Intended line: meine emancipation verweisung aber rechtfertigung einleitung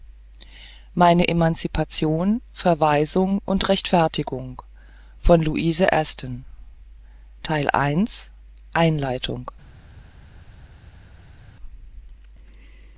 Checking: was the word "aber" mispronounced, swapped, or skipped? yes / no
yes